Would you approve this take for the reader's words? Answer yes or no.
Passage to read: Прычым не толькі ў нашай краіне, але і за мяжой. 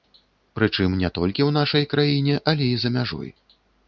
yes